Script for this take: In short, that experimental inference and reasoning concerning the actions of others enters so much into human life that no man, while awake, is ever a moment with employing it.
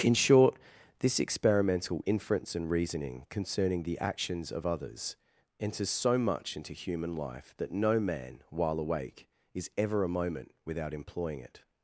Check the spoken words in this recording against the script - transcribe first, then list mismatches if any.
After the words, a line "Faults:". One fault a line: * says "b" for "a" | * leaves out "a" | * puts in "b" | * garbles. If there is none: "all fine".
In short, this experimental inference and reasoning concerning the actions of others enters so much into human life that no man, while awake, is ever a moment without employing it.
Faults:
* says "this" for "that"
* says "without" for "with"